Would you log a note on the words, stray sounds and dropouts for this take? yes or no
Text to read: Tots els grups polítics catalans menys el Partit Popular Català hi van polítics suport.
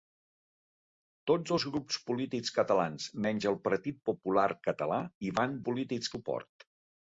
no